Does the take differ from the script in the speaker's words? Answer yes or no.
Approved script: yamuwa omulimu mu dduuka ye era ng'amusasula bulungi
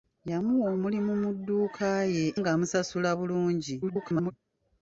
yes